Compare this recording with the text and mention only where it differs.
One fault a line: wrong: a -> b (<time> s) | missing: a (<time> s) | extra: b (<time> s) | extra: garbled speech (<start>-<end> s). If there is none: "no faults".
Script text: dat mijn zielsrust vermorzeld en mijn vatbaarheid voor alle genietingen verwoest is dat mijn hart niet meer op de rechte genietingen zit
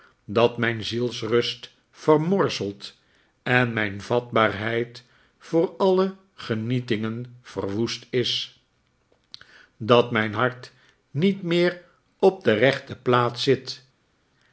wrong: genietingen -> plaats (12.9 s)